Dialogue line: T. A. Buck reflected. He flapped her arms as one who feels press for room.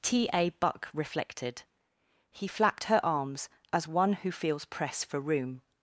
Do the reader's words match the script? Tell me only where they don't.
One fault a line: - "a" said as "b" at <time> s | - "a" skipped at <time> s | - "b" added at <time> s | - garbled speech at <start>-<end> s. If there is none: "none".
none